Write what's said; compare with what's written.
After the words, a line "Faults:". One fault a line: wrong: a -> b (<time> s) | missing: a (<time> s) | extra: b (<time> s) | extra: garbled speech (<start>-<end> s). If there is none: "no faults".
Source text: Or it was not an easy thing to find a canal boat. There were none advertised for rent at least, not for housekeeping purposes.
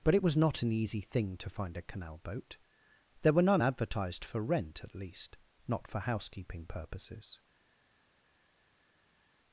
But it was not an easy thing to find a canal boat. There were none advertised for rent at least, not for housekeeping purposes.
Faults:
wrong: Or -> But (0.0 s)